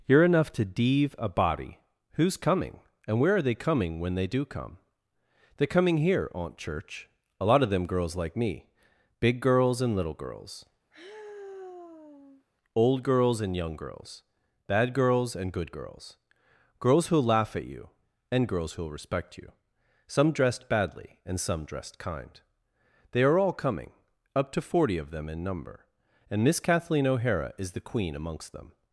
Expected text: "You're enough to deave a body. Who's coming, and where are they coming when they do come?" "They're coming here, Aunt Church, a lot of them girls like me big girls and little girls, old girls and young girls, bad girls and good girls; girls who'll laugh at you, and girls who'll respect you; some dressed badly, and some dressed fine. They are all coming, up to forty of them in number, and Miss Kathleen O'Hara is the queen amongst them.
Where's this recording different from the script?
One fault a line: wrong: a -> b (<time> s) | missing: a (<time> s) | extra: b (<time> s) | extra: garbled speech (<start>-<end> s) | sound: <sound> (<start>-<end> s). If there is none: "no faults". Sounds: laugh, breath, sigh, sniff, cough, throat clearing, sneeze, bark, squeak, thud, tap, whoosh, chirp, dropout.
sound: sigh (10.9-12.4 s)
wrong: fine -> kind (22.0 s)